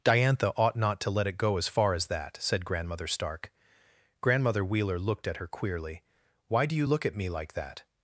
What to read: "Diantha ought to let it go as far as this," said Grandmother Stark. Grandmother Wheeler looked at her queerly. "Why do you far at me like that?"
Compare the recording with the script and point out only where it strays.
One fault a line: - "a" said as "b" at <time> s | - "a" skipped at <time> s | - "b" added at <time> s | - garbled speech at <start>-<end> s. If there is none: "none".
- "not" added at 0.8 s
- "this" said as "that" at 2.1 s
- "far" said as "look" at 6.9 s